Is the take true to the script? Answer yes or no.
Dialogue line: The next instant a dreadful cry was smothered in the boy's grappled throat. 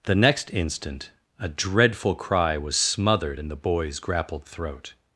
yes